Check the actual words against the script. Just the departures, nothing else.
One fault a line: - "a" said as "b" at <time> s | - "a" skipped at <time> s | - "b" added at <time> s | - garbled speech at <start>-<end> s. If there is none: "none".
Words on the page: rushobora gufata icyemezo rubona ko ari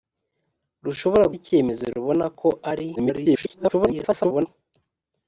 - "gufata" skipped at 1.2 s
- garbled speech at 3.0-4.5 s